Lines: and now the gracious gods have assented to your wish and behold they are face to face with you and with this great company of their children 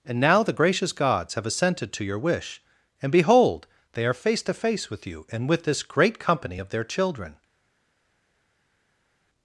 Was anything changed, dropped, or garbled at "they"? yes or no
no